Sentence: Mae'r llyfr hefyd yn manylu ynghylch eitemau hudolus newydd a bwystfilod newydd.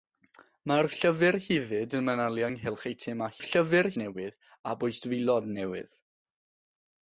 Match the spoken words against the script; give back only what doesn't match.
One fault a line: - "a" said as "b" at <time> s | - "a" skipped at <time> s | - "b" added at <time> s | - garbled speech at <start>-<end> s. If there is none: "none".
- "hudolus" said as "llyfr" at 3.4 s